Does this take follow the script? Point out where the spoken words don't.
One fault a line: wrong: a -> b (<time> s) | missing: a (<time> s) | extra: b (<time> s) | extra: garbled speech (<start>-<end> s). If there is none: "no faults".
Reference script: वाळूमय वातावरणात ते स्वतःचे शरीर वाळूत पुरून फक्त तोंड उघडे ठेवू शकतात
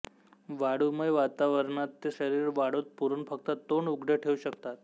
missing: स्वतःचे (2.1 s)